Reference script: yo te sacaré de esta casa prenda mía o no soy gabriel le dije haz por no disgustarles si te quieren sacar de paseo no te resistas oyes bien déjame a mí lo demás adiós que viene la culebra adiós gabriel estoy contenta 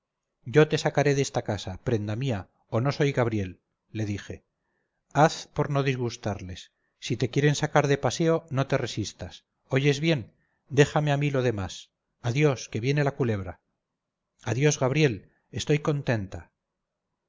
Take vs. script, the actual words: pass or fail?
pass